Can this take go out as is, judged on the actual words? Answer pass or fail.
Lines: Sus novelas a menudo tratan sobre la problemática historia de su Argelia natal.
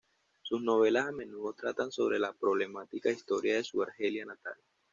pass